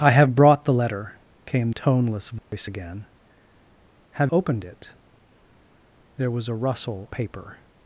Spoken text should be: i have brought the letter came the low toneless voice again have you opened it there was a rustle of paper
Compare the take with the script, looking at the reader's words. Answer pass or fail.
fail